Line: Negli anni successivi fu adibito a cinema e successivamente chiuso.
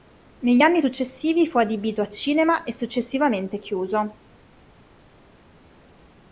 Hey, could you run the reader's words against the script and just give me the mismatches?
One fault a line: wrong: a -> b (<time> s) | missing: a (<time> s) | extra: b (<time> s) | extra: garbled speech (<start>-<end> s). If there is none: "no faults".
no faults